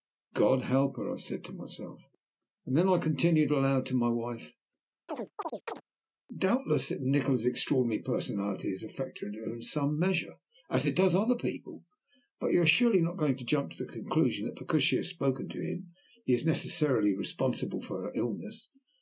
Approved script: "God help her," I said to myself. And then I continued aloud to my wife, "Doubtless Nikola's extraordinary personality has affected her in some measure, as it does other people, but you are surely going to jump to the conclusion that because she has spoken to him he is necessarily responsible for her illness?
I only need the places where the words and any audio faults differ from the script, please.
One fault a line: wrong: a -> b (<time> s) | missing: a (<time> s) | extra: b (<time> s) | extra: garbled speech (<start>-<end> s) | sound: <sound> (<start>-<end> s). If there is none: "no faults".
sound: chirp (5.1-5.8 s)
extra: not (13.0 s)